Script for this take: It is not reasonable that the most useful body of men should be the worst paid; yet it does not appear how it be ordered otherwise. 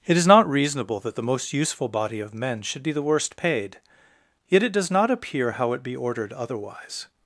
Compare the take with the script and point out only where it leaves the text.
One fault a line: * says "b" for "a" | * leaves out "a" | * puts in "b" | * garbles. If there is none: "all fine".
all fine